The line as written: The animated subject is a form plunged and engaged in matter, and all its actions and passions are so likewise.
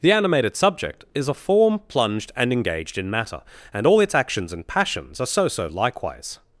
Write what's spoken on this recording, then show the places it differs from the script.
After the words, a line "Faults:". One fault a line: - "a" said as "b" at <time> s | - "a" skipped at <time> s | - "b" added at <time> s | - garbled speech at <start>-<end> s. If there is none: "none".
The animated subject is a form plunged and engaged in matter, and all its actions and passions are so so likewise.
Faults:
- "so" added at 5.5 s